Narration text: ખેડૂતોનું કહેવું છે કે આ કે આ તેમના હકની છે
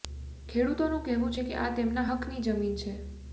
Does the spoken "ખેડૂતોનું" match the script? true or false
true